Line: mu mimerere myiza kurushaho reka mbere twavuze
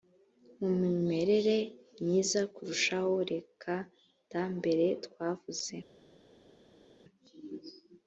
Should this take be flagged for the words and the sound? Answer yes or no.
yes